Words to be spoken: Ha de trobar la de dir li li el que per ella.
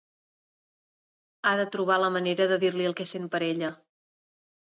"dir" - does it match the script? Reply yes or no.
yes